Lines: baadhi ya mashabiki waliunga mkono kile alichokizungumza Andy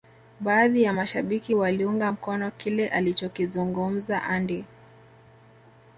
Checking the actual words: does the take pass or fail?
pass